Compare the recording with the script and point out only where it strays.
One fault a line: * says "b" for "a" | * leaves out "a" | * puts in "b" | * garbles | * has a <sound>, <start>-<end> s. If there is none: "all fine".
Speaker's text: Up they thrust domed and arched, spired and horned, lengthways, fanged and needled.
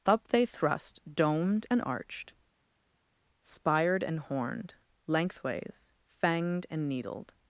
all fine